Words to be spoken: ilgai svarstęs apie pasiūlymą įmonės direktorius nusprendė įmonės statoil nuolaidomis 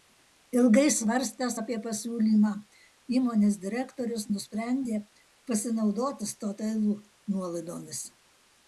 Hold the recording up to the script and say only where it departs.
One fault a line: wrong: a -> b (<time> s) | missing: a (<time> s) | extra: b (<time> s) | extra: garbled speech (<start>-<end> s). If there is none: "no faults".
wrong: įmonės -> pasinaudoti (5.5 s)